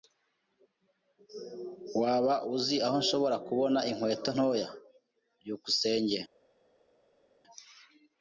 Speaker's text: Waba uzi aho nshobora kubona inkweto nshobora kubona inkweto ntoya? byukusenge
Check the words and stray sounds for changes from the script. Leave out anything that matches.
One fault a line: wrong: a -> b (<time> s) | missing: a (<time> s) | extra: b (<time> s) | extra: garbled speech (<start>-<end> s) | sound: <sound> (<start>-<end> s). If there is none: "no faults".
missing: nshobora kubona inkweto (4.3 s)